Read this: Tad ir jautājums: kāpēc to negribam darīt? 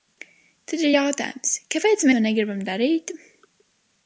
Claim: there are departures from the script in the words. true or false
false